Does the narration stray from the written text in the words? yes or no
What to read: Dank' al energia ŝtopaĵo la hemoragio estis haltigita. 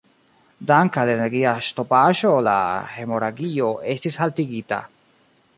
no